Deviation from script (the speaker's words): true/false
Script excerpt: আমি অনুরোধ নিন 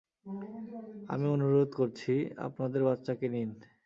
true